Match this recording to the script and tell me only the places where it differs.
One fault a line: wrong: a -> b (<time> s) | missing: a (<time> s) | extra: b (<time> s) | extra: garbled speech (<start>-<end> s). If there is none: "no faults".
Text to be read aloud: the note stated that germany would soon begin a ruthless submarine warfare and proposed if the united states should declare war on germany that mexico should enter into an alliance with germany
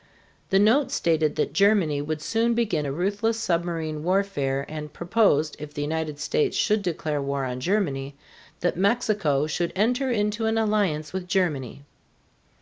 no faults